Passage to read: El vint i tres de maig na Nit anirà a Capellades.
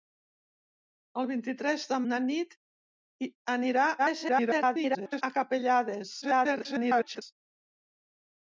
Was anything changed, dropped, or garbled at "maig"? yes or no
yes